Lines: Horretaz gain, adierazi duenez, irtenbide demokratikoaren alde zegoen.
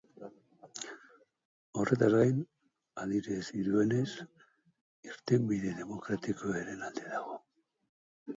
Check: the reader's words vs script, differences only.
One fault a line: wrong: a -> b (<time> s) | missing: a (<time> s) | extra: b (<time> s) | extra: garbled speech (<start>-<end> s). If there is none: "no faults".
wrong: zegoen -> dago (7.1 s)